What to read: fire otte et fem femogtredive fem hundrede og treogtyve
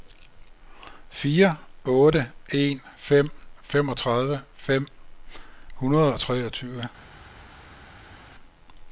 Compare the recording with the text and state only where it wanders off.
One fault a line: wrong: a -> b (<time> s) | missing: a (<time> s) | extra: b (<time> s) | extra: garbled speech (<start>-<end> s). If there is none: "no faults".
wrong: et -> en (2.5 s)